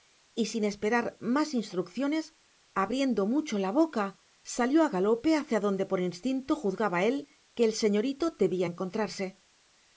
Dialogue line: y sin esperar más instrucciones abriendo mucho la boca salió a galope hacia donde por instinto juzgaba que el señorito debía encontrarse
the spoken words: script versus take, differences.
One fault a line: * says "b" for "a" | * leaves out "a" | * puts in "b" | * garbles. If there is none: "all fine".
* puts in "él"